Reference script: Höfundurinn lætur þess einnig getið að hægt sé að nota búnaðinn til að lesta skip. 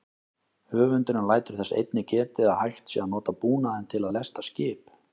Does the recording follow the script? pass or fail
pass